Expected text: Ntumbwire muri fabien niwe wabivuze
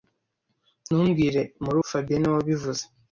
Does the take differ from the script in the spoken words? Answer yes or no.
no